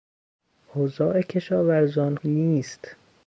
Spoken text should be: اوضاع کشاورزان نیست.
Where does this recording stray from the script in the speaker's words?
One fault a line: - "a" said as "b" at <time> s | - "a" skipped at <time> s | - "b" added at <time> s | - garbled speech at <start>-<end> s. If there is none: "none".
none